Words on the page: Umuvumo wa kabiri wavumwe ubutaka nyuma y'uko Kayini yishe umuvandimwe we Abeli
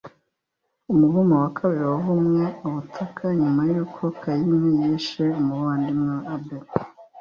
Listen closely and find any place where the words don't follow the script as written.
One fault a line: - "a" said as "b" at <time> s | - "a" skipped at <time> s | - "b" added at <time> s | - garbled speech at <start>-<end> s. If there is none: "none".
none